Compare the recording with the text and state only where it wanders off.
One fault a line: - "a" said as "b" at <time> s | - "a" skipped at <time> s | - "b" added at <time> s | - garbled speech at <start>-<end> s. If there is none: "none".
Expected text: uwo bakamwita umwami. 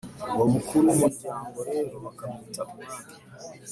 - "mukuru w'umuryango rero" added at 0.5 s